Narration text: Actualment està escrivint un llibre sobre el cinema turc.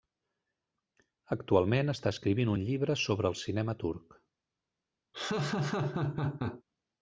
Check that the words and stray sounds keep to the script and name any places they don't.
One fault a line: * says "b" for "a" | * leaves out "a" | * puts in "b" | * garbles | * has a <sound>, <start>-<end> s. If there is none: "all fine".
* has a laugh, 5.1-6.6 s